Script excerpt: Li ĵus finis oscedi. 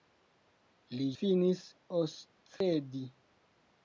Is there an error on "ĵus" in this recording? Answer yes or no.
yes